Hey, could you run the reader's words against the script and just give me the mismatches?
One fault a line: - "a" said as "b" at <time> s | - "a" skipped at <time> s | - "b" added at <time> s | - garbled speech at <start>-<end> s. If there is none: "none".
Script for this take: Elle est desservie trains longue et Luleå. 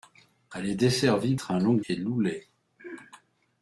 none